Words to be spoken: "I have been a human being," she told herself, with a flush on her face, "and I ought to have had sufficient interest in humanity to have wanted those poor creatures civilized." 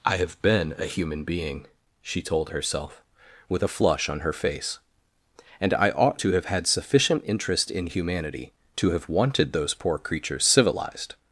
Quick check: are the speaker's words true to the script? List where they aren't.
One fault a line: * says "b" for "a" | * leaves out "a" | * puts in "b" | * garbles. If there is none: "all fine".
all fine